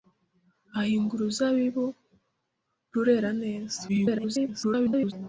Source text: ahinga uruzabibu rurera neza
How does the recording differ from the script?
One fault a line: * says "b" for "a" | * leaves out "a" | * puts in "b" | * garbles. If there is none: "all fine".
* garbles